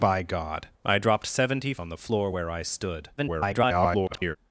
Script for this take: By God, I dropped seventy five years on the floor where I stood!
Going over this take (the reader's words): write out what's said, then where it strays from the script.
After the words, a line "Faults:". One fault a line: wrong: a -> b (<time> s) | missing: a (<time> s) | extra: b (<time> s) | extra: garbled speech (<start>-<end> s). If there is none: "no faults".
By God, I dropped seventy on the floor where I stood! [garbled]
Faults:
missing: five years (1.8 s)
extra: garbled speech (3.2-4.4 s)